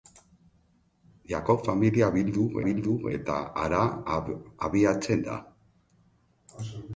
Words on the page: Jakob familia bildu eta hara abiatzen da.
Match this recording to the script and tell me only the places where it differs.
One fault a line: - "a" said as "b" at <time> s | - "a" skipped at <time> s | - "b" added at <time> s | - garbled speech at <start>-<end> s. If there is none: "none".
- "bildu" added at 2.7 s